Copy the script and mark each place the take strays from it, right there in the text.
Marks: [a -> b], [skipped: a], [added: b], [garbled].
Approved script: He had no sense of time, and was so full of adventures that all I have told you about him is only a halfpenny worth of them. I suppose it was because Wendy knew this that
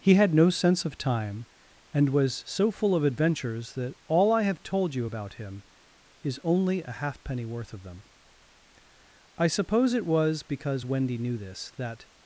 He had no sense of time, and was so full of adventures that all I have told you about him is only a halfpenny worth of them. I suppose it was because Wendy knew this that